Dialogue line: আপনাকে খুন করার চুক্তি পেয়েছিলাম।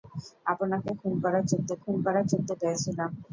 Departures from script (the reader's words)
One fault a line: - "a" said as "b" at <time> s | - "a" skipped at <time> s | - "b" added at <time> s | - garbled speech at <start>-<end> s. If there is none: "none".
- "খুন করার চুক্তি" added at 1.8 s